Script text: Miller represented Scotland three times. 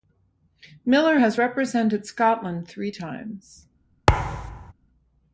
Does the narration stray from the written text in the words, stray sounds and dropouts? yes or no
yes